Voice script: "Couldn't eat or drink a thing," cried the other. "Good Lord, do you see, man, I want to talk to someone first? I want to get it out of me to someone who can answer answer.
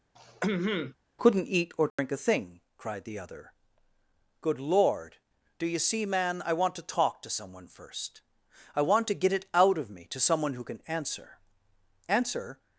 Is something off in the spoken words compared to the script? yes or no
no